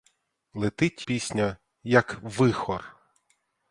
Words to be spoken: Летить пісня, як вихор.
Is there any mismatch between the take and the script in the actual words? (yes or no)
no